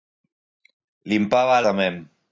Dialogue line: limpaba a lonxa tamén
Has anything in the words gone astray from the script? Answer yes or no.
yes